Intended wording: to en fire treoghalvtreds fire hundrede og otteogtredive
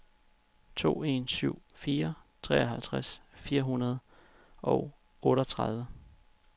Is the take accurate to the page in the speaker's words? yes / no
no